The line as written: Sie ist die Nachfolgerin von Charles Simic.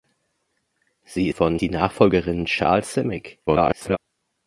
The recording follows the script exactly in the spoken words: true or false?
false